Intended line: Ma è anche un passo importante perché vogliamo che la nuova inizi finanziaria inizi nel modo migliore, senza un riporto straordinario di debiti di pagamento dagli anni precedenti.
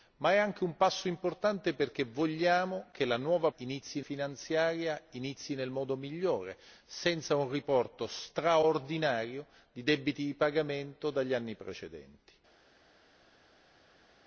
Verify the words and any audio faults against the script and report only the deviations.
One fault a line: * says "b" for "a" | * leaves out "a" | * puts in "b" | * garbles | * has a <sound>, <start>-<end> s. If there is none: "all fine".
all fine